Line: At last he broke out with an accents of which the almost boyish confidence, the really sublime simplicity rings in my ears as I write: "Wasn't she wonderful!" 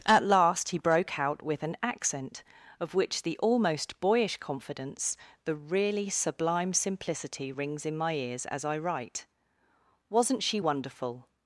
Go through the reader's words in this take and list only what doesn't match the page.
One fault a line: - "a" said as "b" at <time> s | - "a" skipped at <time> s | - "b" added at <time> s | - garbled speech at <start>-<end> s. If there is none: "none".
- "accents" said as "accent" at 1.8 s